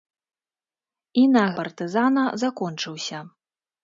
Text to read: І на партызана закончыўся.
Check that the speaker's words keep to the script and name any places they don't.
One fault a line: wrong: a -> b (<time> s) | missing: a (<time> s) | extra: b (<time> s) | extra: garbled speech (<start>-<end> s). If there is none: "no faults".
no faults